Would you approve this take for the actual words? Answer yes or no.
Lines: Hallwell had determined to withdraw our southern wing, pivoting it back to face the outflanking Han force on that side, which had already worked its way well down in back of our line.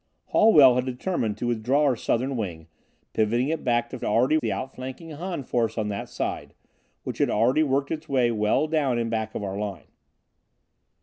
no